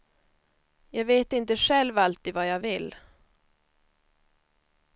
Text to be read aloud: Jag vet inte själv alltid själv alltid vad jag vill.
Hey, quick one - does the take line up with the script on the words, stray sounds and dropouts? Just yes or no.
no